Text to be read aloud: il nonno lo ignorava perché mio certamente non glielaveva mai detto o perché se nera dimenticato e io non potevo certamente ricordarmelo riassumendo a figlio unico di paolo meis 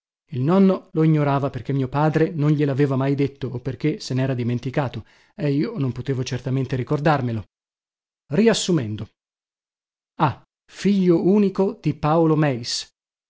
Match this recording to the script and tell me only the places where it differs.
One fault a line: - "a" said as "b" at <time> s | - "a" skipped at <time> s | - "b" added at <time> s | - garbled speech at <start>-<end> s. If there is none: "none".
- "certamente" said as "padre" at 1.9 s